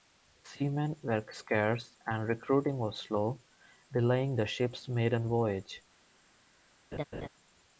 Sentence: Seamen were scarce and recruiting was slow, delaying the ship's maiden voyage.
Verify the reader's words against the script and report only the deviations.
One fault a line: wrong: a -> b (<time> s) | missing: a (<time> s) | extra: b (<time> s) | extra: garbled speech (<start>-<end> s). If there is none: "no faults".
no faults